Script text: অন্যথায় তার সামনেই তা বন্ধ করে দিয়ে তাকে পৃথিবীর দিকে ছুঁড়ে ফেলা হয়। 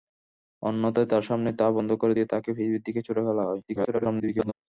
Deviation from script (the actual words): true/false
true